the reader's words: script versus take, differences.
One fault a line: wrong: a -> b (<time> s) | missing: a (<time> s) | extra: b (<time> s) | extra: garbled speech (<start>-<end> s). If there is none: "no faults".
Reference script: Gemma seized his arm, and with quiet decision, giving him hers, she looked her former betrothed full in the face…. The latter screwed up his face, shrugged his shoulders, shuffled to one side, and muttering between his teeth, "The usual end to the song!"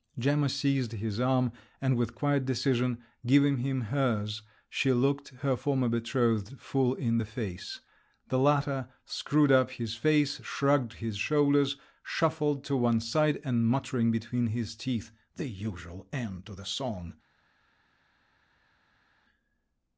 no faults